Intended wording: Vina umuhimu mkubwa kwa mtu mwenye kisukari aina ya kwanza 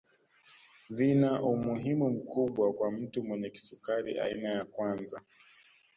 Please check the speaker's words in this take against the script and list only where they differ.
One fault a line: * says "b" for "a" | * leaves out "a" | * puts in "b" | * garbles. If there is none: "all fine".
all fine